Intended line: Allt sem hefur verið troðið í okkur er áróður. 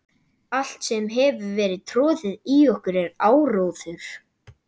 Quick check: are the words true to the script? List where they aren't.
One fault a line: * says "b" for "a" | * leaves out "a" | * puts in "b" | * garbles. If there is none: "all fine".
all fine